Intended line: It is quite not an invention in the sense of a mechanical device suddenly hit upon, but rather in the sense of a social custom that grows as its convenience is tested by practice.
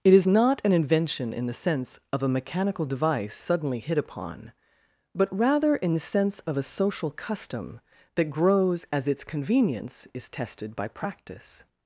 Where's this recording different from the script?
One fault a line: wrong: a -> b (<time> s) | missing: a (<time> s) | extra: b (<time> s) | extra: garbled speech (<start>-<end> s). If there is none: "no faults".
missing: quite (0.3 s)